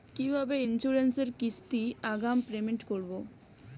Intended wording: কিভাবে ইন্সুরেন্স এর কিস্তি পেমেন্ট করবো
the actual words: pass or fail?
fail